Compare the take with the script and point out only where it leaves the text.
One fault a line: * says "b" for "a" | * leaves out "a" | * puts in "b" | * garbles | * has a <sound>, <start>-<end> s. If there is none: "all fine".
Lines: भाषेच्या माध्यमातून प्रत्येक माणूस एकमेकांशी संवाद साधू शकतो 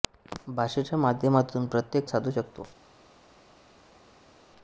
* leaves out "माणूस एकमेकांशी संवाद"